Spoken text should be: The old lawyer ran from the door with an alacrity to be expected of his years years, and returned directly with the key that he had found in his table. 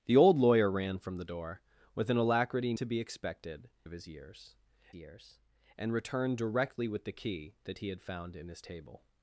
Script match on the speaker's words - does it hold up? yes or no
yes